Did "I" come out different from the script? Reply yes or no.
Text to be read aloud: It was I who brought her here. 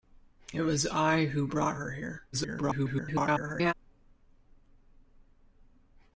no